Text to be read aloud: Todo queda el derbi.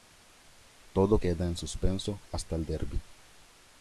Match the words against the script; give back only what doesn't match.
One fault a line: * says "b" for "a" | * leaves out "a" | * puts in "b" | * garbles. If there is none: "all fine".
* puts in "en suspenso hasta"